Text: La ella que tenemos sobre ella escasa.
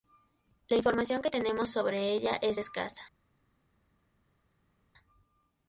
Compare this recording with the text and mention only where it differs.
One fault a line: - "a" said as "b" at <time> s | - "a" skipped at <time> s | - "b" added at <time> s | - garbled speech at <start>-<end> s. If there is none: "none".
- "ella" said as "información" at 0.7 s
- "es" added at 2.4 s